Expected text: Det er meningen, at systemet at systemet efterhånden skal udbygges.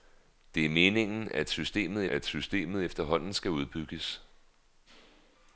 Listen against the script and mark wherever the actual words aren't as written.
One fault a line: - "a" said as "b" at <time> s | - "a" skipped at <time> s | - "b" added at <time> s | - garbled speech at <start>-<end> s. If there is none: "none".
none